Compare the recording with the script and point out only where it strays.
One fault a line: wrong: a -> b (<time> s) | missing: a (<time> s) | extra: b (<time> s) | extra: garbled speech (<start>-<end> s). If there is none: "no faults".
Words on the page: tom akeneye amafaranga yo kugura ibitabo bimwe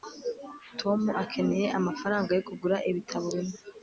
no faults